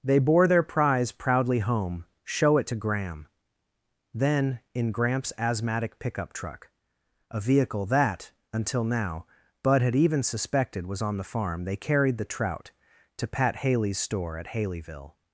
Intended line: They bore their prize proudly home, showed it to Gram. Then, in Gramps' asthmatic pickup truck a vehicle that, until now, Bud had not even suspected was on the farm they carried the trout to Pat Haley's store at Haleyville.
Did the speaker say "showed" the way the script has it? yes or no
no